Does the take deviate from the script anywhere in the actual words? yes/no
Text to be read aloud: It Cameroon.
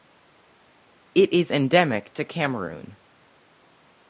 yes